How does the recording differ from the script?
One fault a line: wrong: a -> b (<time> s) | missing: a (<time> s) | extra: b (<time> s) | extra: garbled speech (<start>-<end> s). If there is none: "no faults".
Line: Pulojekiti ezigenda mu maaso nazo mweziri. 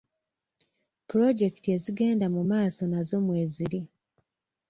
no faults